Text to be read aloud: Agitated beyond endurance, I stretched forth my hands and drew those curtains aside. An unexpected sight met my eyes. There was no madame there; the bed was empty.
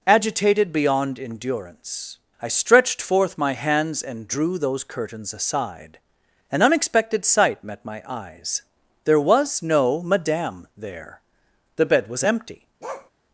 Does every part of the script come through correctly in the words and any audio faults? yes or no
no